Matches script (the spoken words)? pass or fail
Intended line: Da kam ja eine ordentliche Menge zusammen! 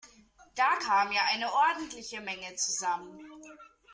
pass